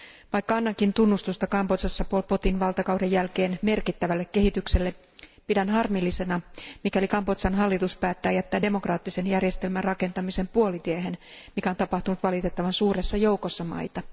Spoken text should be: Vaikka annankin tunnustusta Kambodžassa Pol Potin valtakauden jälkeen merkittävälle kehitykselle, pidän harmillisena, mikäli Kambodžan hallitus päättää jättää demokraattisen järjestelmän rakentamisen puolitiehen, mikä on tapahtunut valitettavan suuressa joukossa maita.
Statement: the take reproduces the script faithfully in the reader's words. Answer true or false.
true